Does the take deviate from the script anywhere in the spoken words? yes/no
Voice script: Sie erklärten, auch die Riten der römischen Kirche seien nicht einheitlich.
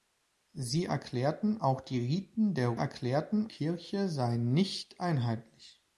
yes